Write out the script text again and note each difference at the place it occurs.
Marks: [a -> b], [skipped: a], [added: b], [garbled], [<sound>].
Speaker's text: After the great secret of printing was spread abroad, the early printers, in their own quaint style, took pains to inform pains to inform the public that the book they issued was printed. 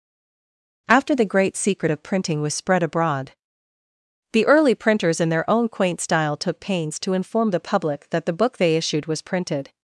After the great secret of printing was spread abroad, the early printers, in their own quaint style, took pains to inform [skipped: pains to inform] the public that the book they issued was printed.